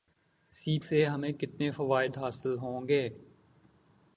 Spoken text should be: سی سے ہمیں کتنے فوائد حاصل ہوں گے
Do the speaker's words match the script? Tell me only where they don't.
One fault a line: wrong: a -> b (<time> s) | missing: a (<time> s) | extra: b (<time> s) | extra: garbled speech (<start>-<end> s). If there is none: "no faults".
no faults